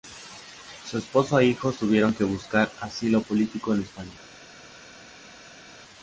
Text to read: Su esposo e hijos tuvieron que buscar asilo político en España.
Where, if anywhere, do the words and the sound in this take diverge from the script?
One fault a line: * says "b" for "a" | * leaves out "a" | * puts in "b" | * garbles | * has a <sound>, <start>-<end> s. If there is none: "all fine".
all fine